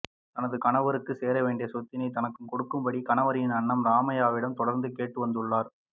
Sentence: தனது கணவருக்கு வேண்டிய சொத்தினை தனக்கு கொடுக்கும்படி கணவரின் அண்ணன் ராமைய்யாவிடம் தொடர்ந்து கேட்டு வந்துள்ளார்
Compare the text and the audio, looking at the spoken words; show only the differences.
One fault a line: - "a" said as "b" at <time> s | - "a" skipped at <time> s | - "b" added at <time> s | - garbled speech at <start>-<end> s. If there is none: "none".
- "சேர" added at 1.2 s